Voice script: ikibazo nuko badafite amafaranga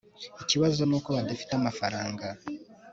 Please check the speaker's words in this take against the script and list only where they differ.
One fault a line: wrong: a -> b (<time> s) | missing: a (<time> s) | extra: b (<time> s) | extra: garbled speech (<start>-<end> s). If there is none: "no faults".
no faults